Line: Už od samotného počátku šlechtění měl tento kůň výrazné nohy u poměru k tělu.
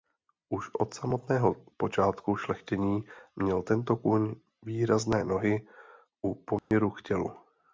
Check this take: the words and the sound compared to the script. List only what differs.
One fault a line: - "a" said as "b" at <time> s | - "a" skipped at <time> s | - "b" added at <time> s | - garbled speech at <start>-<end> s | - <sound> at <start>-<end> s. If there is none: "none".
- dropout at 6.6-6.7 s